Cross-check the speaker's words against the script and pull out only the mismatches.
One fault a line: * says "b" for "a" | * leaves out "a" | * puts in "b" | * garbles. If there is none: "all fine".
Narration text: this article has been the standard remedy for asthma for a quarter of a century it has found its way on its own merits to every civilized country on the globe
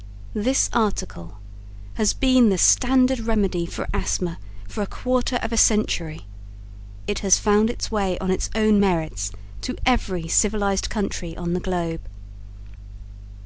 all fine